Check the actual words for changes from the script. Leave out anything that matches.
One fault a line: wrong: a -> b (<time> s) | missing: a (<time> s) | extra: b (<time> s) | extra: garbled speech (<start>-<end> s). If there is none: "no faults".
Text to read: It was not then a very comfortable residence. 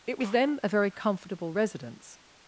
missing: not (0.3 s)